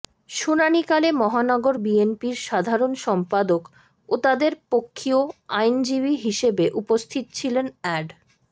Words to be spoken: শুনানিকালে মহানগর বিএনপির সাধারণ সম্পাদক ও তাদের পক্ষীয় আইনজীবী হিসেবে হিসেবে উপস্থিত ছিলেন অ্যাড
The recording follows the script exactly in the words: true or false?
false